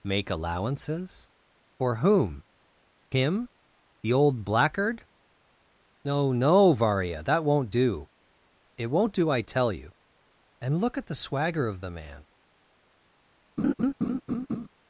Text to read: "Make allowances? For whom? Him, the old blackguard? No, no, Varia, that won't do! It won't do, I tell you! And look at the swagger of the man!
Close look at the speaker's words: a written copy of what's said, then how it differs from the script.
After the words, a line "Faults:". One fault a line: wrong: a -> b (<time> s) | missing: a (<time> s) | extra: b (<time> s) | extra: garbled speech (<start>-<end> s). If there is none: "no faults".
"Make allowances? For whom? Him, the old blackguard? No, no, Varia, that won't do! It won't do, I tell you! And look at the swagger of the man!
Faults:
no faults